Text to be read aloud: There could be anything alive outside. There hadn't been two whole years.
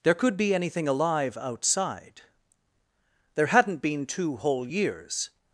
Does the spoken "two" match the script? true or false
true